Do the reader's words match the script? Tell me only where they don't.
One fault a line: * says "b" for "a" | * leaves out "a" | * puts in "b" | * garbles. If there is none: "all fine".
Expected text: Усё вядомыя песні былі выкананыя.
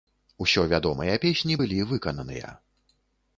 all fine